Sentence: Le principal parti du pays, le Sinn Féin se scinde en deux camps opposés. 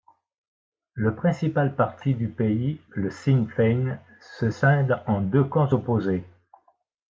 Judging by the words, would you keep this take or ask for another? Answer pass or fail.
pass